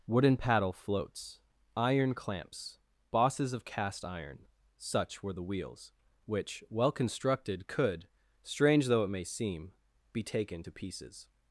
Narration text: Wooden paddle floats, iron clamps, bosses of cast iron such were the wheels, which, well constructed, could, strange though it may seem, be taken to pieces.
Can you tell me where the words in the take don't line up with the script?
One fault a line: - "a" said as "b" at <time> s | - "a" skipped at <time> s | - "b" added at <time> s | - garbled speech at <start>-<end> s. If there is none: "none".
none